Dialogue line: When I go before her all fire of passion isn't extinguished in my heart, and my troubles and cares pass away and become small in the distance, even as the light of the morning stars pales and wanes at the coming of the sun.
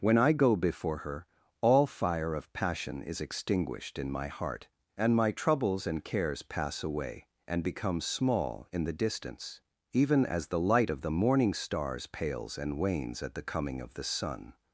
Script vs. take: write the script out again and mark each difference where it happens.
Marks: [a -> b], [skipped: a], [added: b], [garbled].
When I go before her all fire of passion [isn't -> is] extinguished in my heart, and my troubles and cares pass away and become small in the distance, even as the light of the morning stars pales and wanes at the coming of the sun.